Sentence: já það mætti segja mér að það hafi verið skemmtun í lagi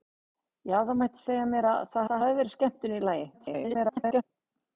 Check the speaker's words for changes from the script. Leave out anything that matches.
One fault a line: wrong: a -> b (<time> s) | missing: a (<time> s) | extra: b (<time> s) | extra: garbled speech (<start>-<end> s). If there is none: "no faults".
extra: það (2.1 s)
extra: garbled speech (3.3-4.2 s)